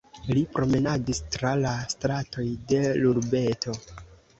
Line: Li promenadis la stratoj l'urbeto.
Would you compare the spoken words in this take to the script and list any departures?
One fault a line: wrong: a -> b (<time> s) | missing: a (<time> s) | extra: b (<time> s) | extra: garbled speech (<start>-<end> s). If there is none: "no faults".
extra: tra (1.4 s)
extra: de (2.7 s)